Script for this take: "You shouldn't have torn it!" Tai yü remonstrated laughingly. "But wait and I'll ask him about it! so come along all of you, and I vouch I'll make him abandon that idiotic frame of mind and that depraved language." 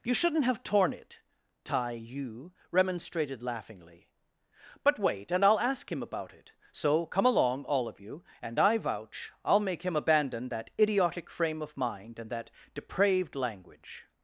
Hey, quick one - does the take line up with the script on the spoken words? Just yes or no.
yes